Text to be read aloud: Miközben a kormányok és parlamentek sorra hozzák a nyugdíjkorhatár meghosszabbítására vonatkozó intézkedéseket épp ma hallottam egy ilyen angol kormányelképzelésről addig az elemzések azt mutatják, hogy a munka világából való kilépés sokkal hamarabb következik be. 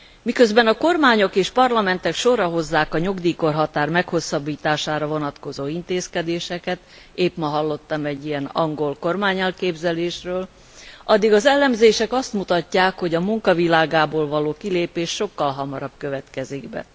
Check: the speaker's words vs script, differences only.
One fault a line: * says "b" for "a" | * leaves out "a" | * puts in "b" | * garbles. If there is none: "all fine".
all fine